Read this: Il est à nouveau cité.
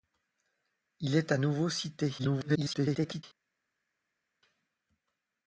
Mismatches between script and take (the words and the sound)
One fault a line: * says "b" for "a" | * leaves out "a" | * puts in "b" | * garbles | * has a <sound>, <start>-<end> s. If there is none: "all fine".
* garbles